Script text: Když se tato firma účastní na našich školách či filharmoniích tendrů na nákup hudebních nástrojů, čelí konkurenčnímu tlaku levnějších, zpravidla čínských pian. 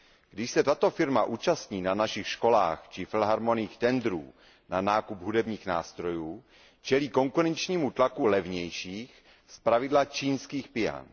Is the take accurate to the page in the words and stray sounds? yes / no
yes